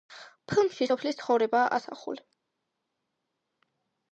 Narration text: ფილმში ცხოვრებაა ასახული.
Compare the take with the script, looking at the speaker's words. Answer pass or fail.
fail